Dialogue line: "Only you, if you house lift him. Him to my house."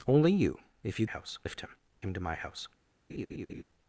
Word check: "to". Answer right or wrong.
right